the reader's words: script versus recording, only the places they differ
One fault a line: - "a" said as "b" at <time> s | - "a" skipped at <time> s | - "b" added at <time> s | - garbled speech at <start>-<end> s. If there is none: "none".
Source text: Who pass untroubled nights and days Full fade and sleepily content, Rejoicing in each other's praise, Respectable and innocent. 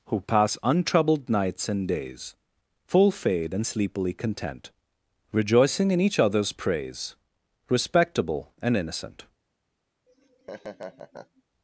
none